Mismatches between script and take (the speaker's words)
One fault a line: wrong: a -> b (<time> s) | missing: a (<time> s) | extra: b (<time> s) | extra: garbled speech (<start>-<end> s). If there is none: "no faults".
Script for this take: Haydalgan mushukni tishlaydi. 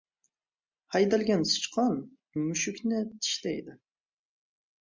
extra: sichqon (1.5 s)